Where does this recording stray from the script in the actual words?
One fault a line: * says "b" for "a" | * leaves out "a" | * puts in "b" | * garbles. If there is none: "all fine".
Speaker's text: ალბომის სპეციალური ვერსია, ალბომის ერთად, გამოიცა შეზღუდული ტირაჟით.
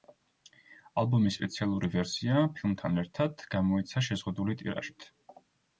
* says "ფილმთან" for "ალბომის"